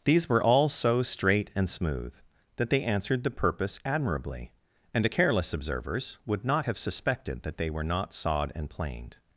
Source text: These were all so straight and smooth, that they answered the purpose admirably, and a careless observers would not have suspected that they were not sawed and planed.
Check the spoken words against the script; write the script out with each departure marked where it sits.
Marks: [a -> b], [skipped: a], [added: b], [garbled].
These were all so straight and smooth, that they answered the purpose admirably, and a careless observers would not have suspected that they were not sawed and planed.